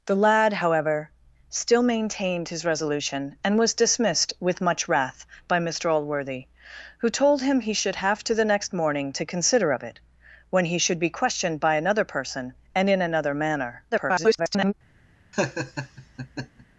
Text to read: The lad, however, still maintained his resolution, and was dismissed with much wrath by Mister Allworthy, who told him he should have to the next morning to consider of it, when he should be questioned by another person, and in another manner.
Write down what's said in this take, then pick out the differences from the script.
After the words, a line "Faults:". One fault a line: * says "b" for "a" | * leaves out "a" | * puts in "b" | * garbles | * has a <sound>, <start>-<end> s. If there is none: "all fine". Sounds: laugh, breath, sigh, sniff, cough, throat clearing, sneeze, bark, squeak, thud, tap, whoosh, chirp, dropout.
The lad, however, still maintained his resolution, and was dismissed with much wrath by Mister Allworthy, who told him he should have to the next morning to consider of it, when he should be questioned by another person, and in another manner. [garbled]
Faults:
* garbles
* has a laugh, 15.3-16.7 s